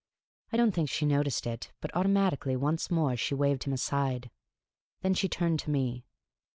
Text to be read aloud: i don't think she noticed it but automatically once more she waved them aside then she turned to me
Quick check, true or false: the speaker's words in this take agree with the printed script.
false